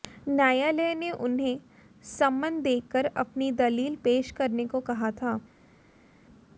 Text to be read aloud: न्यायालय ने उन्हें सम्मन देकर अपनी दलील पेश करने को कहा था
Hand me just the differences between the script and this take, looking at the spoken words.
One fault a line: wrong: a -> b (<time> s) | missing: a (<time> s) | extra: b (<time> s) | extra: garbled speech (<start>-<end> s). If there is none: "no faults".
no faults